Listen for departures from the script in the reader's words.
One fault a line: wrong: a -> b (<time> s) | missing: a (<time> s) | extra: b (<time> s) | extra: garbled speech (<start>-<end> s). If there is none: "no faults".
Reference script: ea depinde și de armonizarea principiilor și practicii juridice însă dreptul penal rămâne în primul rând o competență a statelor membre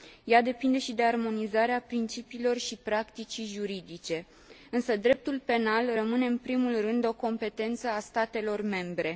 no faults